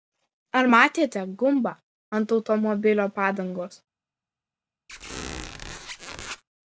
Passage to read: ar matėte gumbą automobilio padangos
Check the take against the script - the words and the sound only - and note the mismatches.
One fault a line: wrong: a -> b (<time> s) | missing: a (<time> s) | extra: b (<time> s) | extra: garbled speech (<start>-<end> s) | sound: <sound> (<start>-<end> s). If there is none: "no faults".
extra: ant (2.2 s)
sound: squeak (4.9-6.4 s)